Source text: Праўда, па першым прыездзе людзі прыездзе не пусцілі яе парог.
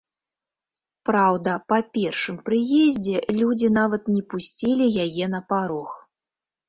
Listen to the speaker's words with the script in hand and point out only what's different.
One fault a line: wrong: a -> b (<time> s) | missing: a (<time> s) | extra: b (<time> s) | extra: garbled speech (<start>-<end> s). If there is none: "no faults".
wrong: прыездзе -> нават (3.8 s)
extra: на (5.3 s)